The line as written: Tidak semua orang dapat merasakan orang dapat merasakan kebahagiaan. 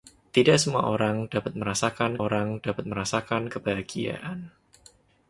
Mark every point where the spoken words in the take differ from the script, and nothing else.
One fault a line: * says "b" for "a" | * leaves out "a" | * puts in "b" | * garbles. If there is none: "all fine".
all fine